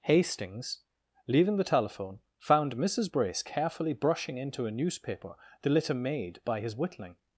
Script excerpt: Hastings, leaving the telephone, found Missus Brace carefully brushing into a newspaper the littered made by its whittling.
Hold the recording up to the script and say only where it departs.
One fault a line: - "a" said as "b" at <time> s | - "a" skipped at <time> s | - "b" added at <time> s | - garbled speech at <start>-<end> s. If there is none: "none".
- "littered" said as "litter" at 5.7 s
- "its" said as "his" at 6.6 s